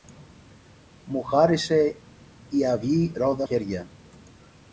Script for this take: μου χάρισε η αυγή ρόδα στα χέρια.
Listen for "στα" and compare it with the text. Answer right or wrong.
wrong